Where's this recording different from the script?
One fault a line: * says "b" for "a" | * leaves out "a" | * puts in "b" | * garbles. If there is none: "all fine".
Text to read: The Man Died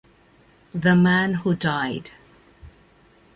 * puts in "Who"